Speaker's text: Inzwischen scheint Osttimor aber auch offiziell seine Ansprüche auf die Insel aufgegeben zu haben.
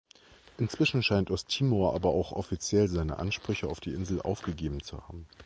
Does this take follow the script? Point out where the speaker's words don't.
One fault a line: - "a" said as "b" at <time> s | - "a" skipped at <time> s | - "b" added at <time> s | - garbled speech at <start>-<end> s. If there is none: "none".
none